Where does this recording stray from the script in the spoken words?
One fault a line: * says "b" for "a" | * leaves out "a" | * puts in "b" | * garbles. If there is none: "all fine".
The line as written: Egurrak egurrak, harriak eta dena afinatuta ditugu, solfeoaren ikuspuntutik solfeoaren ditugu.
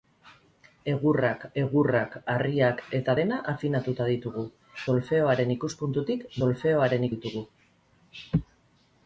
all fine